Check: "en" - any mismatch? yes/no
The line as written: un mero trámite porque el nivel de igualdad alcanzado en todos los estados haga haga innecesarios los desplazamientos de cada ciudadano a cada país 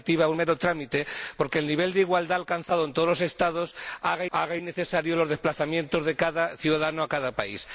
no